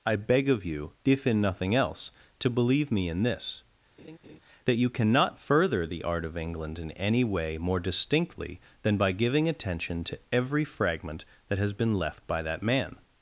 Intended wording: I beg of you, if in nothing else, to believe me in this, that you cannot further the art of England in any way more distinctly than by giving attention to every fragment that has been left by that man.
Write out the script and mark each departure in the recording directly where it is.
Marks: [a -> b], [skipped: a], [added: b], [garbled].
I beg of you, if in nothing else, to believe me in this, that you cannot further the art of England in any way more distinctly than by giving attention to every fragment that has been left by that man.